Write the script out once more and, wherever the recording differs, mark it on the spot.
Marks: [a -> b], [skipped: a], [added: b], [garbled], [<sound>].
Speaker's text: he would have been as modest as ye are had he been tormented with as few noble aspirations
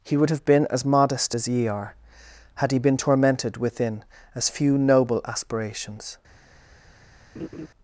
he would have been as modest as ye are had he been tormented [with -> within] as few noble aspirations [laugh]